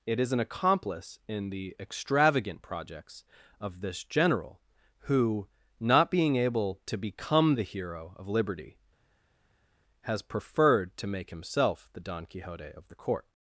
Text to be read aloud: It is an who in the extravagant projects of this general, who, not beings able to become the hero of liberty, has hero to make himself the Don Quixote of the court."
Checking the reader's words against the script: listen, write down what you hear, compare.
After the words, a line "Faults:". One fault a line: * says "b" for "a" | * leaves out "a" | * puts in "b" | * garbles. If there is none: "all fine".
It is an accomplice in the extravagant projects of this general, who, not being able to become the hero of liberty, has preferred to make himself the Don Quixote of the court."
Faults:
* says "accomplice" for "who"
* says "being" for "beings"
* says "preferred" for "hero"